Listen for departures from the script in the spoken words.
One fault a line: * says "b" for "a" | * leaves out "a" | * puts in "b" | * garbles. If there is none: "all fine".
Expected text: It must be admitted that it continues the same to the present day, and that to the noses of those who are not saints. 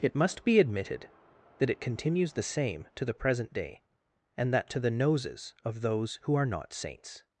all fine